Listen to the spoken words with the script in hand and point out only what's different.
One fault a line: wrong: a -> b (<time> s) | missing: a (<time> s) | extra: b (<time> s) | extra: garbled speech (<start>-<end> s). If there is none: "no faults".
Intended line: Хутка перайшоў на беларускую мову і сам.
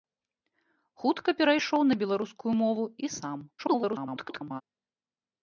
extra: garbled speech (3.6-4.6 s)